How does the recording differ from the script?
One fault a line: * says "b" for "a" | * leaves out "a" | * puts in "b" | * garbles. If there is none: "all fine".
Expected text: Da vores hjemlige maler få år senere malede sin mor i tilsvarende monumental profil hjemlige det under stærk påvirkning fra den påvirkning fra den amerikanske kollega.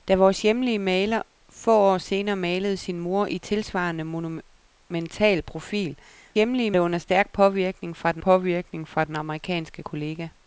all fine